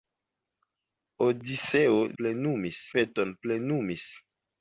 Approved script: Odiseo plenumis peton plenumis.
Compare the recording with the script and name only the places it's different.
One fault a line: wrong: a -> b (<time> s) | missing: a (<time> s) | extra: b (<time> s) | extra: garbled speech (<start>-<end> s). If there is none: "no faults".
no faults